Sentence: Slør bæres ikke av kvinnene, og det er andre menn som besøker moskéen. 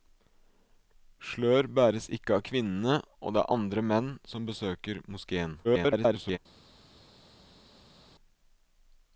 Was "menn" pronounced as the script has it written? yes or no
yes